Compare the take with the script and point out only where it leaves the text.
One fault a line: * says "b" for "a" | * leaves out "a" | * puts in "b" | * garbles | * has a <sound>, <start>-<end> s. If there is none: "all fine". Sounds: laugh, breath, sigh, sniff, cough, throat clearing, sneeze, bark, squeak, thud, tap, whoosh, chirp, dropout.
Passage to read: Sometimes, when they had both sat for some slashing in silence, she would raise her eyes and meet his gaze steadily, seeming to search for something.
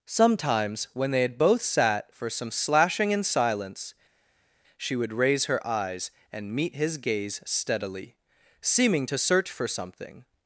all fine